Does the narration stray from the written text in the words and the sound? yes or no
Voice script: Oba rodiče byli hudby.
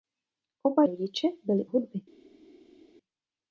no